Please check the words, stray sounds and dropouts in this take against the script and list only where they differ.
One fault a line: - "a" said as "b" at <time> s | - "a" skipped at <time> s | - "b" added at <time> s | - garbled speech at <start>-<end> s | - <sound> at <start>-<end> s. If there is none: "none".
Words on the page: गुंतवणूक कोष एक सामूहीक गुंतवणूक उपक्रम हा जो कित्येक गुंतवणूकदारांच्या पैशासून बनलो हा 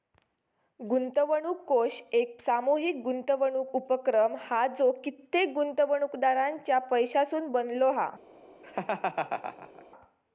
- laugh at 8.6-9.8 s